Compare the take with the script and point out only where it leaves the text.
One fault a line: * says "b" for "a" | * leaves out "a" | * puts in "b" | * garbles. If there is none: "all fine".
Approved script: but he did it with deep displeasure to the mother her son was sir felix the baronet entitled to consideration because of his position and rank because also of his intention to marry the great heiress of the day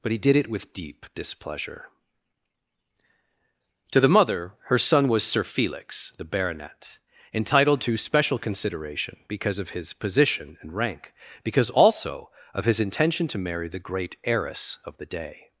* puts in "special"